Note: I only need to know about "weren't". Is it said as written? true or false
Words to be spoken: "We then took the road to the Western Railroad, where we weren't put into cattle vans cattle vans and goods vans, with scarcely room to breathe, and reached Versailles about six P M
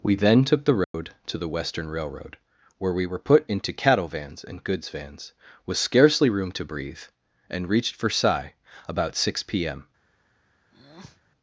false